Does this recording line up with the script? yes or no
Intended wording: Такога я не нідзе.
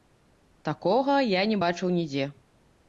no